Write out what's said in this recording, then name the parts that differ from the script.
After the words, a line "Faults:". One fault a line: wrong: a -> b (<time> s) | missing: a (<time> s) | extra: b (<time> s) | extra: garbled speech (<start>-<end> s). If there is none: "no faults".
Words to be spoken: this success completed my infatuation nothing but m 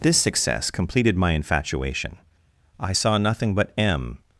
this success completed my infatuation i saw nothing but m
Faults:
extra: i saw (2.8 s)